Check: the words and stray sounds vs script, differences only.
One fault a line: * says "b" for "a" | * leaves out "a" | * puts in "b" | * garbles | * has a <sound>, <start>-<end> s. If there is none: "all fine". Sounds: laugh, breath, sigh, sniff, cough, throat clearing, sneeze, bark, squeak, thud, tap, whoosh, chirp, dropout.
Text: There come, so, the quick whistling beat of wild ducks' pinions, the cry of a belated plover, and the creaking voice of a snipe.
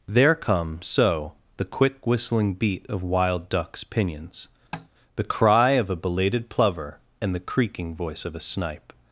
* has a tap, 4.7-4.9 s